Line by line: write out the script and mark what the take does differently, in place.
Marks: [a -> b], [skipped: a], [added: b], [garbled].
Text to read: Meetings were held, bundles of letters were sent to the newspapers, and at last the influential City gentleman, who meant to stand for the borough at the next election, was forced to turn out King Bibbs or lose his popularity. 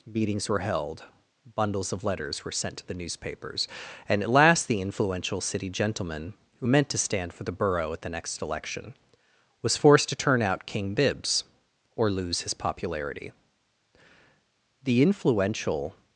Meetings were held, bundles of letters were sent to the newspapers, and at last the influential City gentleman, who meant to stand for the borough at the next election, was forced to turn out King Bibbs or lose his popularity. [added: The influential]